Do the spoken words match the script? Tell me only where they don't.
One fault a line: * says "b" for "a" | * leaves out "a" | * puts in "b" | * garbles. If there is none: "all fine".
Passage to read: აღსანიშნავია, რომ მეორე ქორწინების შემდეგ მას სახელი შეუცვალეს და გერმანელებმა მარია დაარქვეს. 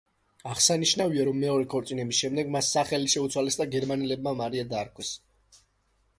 all fine